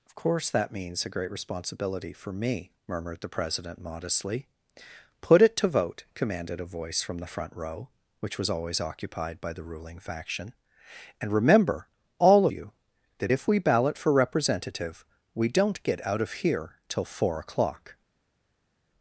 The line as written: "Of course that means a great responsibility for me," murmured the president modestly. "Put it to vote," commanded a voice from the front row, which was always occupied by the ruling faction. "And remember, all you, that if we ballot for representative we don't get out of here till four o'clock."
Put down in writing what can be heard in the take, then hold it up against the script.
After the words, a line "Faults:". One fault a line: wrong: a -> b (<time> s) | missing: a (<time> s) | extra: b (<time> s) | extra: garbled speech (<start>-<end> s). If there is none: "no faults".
"Of course that means a great responsibility for me," murmured the president modestly. "Put it to vote," commanded a voice from the front row, which was always occupied by the ruling faction. "And remember, all you, that if we ballot for representative we don't get out of here till four o'clock."
Faults:
no faults